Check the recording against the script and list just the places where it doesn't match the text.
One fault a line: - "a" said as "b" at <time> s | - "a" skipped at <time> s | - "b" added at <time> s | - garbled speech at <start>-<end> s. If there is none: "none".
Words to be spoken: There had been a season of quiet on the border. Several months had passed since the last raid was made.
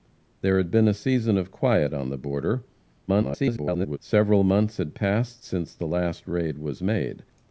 - garbled speech at 3.1-4.0 s